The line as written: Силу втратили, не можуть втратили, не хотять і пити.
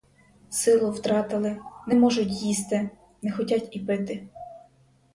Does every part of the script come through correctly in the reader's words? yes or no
no